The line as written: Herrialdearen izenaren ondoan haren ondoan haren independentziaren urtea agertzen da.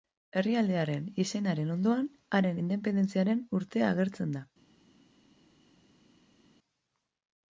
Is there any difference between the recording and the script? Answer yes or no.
yes